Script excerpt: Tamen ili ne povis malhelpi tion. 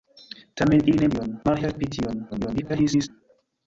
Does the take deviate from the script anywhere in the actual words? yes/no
yes